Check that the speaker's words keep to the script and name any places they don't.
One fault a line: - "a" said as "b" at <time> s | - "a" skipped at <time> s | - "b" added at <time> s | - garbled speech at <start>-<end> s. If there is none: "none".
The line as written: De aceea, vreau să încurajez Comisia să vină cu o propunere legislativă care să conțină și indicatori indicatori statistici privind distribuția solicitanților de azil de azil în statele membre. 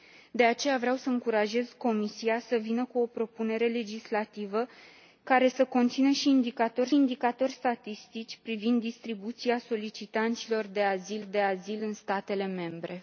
none